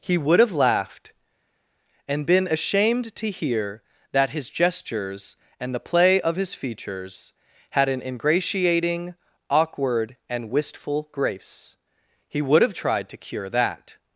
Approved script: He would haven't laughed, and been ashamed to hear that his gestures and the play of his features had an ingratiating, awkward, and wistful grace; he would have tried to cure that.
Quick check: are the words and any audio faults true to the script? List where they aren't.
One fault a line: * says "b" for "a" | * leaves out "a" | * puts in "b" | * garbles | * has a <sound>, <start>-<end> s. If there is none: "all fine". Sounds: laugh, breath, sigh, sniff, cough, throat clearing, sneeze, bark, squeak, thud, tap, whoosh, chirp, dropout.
* says "have" for "haven't"